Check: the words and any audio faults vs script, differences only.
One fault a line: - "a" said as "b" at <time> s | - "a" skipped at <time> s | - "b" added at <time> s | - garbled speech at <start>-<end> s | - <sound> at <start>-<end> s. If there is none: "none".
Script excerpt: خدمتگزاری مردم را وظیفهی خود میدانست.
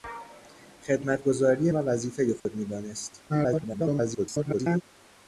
- "مردم" skipped at 1.7 s
- dropout at 2.4-2.5 s
- garbled speech at 3.3-4.8 s